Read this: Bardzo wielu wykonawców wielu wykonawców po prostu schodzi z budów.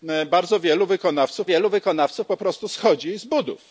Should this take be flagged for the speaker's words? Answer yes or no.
no